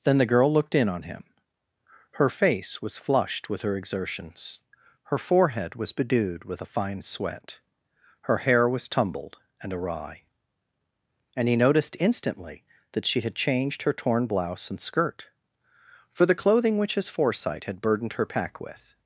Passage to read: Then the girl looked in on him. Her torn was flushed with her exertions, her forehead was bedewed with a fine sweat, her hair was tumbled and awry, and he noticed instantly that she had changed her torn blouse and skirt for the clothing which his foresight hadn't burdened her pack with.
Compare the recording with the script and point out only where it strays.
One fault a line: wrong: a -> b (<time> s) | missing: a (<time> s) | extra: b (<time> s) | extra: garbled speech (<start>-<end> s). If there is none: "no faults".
wrong: torn -> face (2.3 s)
wrong: hadn't -> had (17.6 s)